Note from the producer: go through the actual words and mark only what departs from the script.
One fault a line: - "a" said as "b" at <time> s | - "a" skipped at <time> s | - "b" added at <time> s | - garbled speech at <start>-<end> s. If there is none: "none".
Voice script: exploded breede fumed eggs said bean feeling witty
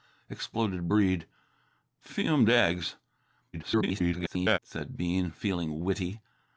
- garbled speech at 3.5-4.6 s